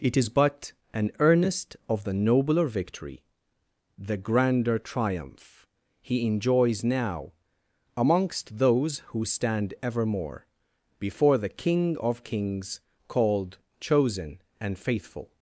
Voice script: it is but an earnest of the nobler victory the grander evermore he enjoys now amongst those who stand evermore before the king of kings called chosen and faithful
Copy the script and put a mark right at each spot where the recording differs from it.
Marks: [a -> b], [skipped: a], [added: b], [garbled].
it is but an earnest of the nobler victory the grander [evermore -> triumph] he enjoys now amongst those who stand evermore before the king of kings called chosen and faithful